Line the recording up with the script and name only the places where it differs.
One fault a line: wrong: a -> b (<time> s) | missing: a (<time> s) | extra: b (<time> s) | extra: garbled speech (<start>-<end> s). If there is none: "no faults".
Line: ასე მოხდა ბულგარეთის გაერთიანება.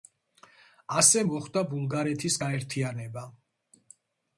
no faults